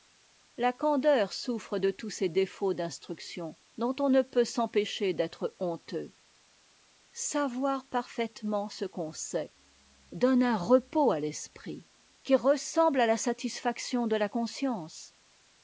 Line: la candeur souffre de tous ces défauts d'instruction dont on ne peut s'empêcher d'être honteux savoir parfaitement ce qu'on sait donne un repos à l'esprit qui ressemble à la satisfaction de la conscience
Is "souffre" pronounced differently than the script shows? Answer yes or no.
no